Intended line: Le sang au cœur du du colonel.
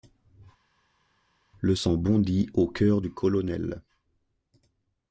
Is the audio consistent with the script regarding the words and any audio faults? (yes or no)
no